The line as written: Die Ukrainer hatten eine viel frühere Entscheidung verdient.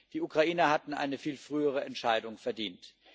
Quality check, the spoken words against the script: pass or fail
pass